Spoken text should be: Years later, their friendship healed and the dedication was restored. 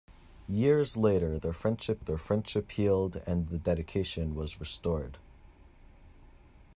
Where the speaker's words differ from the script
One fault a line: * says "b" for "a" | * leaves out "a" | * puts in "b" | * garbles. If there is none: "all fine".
* puts in "their friendship"